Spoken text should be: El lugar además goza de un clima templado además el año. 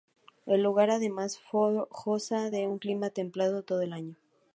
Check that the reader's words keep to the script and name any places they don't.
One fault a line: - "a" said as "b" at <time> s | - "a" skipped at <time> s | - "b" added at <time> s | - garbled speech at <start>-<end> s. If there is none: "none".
- "además" said as "todo" at 3.6 s